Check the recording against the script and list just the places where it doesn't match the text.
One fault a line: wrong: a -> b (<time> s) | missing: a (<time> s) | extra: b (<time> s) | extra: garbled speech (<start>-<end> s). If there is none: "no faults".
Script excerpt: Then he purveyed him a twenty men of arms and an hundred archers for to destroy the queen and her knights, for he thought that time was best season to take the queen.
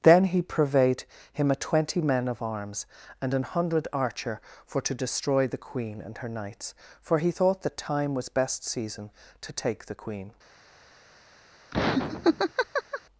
wrong: archers -> archer (3.9 s)